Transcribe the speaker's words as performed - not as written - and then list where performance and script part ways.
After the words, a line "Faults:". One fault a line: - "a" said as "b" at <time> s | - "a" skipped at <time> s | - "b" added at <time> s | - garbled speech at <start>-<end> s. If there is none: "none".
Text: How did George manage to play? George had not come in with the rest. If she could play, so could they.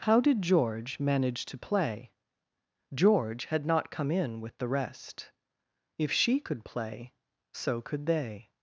How did George manage to play? George had not come in with the rest. If she could play, so could they.
Faults:
none